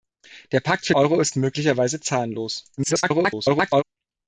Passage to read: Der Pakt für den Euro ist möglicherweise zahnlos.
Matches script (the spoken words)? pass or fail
fail